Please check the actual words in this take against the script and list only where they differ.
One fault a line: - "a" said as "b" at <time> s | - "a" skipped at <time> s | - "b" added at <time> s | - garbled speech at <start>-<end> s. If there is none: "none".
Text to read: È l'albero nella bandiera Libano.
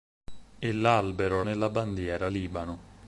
none